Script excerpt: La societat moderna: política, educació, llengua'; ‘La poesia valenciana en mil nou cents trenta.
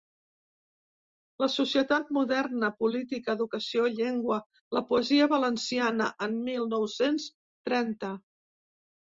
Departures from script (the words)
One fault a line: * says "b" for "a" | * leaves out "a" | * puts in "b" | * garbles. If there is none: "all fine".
all fine